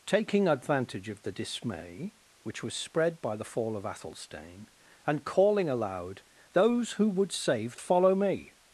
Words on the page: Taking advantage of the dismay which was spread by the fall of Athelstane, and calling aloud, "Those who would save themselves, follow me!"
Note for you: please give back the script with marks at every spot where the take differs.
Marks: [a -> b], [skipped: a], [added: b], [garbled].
Taking advantage of the dismay which was spread by the fall of Athelstane, and calling aloud, "Those who would save [skipped: themselves,] follow me!"